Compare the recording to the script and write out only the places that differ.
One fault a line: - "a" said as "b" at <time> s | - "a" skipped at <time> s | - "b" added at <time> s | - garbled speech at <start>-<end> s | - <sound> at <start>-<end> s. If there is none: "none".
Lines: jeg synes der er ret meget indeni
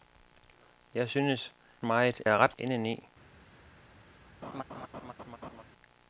- "der" said as "meget" at 1.8 s
- "meget" skipped at 2.6 s
- laugh at 4.4-5.6 s